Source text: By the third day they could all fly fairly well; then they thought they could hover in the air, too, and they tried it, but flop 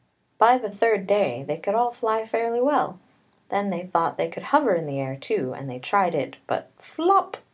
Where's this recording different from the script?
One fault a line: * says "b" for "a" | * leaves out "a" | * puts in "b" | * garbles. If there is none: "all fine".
all fine